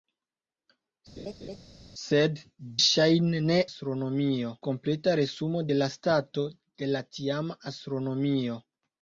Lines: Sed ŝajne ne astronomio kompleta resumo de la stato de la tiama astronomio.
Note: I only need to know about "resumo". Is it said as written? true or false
true